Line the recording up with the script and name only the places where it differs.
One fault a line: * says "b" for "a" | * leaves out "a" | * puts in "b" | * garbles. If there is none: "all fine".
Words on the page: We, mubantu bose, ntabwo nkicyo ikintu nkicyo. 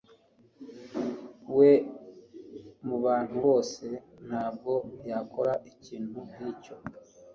* says "yakora" for "nkicyo"